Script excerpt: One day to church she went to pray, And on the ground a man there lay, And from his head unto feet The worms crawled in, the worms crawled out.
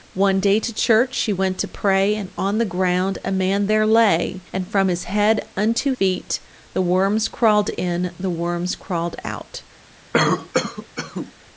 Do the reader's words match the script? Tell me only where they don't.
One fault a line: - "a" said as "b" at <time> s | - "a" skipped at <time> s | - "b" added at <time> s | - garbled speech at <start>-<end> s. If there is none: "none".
none